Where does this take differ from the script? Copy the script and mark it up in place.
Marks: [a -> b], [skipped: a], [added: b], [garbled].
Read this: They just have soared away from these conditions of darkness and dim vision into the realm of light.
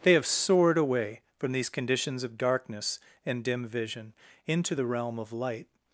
They [skipped: just] have soared away from these conditions of darkness and dim vision into the realm of light.